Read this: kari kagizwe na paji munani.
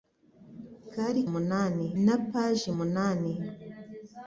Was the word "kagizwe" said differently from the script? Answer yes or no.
yes